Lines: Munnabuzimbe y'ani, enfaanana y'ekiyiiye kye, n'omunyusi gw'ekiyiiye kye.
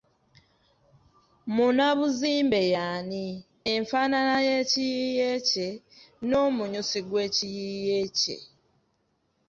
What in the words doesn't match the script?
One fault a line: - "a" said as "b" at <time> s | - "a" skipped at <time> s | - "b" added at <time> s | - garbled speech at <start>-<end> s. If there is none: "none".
none